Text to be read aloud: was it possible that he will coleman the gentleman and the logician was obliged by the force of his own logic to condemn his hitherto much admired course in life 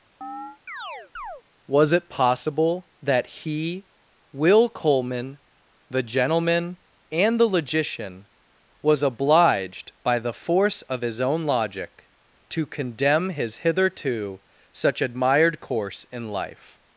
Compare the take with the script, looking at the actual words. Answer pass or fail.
fail